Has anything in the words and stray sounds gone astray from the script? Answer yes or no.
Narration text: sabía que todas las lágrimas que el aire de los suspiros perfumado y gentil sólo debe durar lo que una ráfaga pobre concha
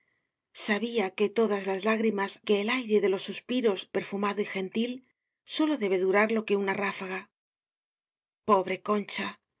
no